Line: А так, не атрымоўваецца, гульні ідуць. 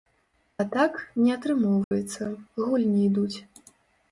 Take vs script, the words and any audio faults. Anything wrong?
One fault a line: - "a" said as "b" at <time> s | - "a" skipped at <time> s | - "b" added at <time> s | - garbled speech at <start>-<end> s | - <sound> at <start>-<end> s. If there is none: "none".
- dropout at 1.8-1.9 s